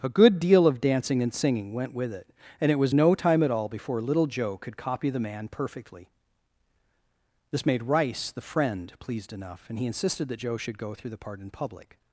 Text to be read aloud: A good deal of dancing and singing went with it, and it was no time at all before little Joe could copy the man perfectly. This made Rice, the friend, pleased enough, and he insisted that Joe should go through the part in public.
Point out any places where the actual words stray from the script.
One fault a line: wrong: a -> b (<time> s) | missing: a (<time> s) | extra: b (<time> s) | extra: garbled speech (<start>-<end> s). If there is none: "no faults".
no faults